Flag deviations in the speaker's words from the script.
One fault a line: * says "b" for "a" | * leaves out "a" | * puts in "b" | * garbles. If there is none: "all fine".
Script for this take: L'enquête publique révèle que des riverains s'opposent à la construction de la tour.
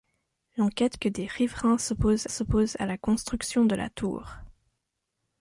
* leaves out "publique révèle"
* puts in "s'opposent"